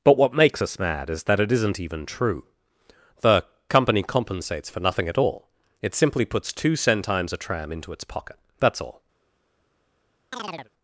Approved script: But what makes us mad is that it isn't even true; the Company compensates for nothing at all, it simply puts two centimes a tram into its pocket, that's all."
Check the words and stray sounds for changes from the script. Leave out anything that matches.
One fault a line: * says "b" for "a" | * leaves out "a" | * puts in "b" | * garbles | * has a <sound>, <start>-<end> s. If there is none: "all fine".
* has a chirp, 10.3-10.7 s